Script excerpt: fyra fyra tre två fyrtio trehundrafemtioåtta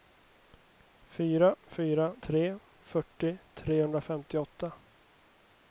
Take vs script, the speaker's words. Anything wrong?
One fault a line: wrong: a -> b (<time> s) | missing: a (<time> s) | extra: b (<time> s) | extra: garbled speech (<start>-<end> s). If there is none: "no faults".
missing: två (2.6 s)